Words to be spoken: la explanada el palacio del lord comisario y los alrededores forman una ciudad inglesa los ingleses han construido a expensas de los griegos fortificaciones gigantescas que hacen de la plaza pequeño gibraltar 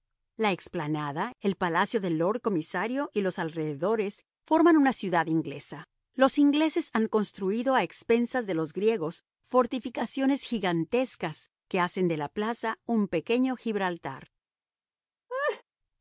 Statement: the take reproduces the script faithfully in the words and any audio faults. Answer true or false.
false